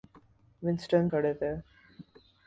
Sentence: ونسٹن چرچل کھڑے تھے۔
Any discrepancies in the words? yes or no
yes